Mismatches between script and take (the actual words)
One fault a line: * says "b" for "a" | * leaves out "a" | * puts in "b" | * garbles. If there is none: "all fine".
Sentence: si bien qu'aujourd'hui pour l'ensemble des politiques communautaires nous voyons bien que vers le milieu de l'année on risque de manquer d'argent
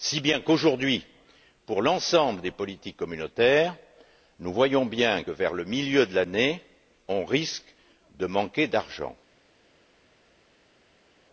* leaves out "que"